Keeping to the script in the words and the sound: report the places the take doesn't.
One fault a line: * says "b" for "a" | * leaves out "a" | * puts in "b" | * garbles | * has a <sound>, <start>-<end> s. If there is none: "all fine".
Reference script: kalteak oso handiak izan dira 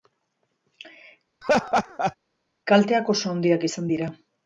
* has a laugh, 1.4-2.2 s